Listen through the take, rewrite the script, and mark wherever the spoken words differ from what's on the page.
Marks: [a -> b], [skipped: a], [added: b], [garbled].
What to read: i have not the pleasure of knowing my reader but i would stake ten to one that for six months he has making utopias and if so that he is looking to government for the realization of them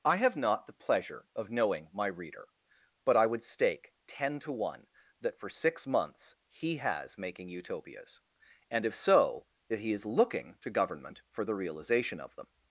i have not the pleasure of knowing my reader but i would stake ten to one that for six months he has making utopias and if so that he is looking to government for the realization of them